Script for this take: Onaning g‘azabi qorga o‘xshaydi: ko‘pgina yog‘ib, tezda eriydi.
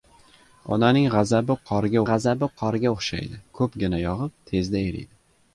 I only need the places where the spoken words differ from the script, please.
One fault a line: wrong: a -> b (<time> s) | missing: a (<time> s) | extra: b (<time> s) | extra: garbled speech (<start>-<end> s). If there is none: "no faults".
extra: g‘azabi qorga (2.1 s)